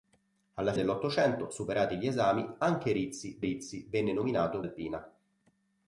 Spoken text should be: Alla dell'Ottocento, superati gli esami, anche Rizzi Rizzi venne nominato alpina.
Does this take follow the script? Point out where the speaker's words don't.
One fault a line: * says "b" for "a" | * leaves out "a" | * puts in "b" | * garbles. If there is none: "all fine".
all fine